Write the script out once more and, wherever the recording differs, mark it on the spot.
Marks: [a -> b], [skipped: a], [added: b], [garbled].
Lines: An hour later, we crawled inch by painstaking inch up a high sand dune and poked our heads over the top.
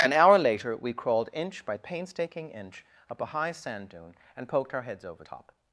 An hour later, we crawled inch by painstaking inch up a high sand dune and poked our heads over [skipped: the] top.